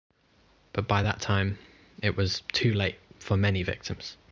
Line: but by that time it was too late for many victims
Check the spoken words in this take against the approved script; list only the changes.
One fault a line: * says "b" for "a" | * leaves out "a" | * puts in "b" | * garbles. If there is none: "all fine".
all fine